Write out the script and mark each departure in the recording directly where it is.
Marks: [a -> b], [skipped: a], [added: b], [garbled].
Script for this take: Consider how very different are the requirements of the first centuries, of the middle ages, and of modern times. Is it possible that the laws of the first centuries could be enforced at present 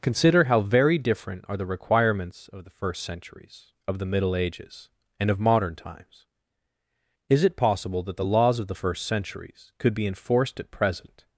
Consider how very different are the requirements of the first centuries, of the middle ages, and of modern times. Is it possible that the laws of the first centuries could be enforced at present